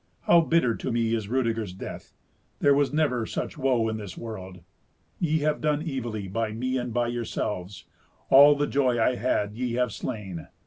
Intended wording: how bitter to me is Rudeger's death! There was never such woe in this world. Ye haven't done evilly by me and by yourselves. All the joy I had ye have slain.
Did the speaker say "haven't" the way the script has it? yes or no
no